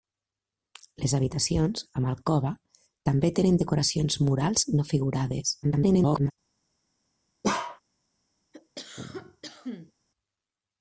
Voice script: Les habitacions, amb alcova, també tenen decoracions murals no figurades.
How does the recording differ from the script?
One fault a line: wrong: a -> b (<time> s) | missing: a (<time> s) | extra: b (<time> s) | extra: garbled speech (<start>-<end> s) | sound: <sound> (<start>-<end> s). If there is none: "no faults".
extra: garbled speech (5.6-6.3 s)
sound: bark (7.4-7.8 s)
sound: cough (8.5-9.9 s)